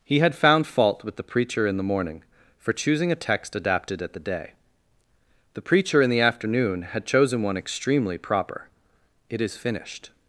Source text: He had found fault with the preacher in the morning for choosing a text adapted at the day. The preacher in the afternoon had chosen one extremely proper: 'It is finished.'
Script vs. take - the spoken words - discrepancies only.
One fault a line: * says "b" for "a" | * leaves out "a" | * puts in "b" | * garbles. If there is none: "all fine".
all fine